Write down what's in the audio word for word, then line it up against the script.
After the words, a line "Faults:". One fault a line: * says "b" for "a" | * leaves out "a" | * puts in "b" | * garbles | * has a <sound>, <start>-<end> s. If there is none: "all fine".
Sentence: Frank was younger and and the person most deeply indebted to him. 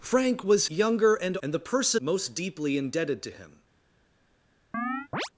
Frank was younger and and the person most deeply indebted to him.
Faults:
* has a chirp, 4.7-5.3 s